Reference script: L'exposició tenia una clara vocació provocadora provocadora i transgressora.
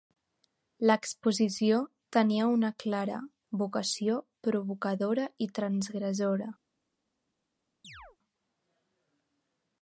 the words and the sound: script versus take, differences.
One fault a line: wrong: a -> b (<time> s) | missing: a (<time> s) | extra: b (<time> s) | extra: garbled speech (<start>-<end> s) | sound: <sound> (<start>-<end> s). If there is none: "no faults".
missing: provocadora (5.3 s)
sound: chirp (7.8-8.2 s)